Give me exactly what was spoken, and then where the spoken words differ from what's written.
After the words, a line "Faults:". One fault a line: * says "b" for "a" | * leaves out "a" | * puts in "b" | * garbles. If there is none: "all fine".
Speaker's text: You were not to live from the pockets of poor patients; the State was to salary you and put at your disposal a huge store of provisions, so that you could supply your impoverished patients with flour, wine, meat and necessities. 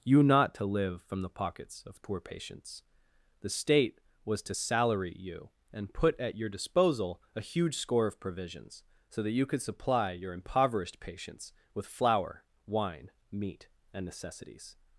You not to live from the pockets of poor patients; the State was to salary you and put at your disposal a huge score of provisions, so that you could supply your impoverished patients with flour, wine, meat and necessities.
Faults:
* leaves out "were"
* says "score" for "store"